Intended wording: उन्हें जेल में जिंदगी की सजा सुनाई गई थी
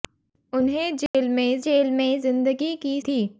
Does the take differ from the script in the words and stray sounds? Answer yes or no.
yes